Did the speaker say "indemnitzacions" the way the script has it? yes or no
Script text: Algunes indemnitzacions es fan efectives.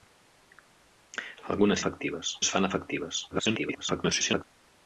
no